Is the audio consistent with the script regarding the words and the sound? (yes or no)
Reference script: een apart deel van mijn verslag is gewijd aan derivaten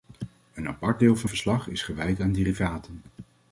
no